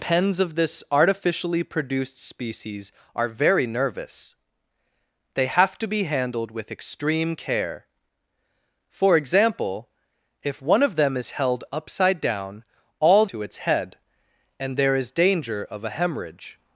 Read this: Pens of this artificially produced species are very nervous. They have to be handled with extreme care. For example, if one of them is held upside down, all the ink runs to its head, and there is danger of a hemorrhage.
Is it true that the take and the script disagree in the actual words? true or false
true